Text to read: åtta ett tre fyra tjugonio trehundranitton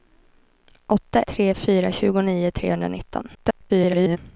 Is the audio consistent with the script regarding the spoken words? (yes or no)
no